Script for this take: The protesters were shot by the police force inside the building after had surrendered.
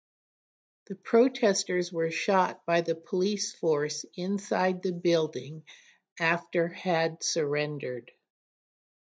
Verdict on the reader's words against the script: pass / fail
pass